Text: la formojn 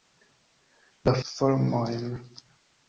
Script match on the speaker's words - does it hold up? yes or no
yes